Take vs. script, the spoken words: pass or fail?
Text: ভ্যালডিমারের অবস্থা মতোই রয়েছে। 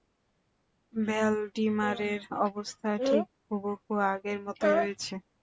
fail